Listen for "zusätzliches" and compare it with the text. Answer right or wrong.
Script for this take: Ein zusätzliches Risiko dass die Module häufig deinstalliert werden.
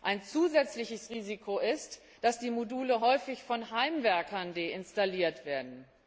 right